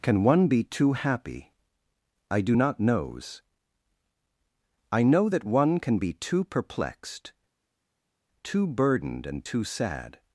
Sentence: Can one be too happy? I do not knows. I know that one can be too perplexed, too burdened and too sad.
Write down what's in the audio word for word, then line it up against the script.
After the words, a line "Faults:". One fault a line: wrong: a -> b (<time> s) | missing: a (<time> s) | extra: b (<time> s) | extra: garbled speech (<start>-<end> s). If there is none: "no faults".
Can one be too happy? I do not knows. I know that one can be too perplexed, too burdened and too sad.
Faults:
no faults